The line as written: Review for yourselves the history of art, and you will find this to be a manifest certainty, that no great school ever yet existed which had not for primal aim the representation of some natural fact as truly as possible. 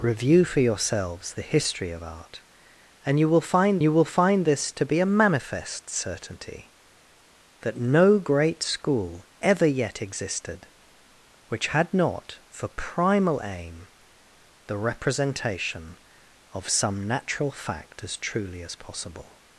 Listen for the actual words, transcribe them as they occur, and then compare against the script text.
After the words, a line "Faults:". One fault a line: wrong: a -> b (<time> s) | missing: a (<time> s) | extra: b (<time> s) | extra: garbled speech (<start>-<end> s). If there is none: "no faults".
Review for yourselves the history of art, and you will find you will find this to be a manifest certainty, that no great school ever yet existed which had not for primal aim the representation of some natural fact as truly as possible.
Faults:
extra: you will find (3.8 s)